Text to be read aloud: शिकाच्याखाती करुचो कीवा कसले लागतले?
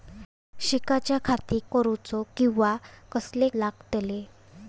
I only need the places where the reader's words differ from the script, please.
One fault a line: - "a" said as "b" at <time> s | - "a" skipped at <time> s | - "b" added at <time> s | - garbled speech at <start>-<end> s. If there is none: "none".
none